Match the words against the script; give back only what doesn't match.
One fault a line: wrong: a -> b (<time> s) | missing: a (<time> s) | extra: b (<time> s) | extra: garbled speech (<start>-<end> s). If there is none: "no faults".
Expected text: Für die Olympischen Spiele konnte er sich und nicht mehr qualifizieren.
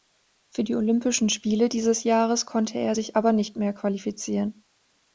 extra: dieses Jahres (1.7 s)
wrong: und -> aber (3.2 s)